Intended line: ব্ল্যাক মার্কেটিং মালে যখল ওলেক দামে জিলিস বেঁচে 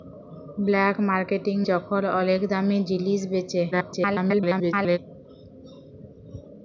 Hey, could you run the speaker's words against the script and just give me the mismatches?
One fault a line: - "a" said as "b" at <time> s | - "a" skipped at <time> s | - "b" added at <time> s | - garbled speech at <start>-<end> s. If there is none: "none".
- "মালে" skipped at 1.6 s
- garbled speech at 3.7-5.0 s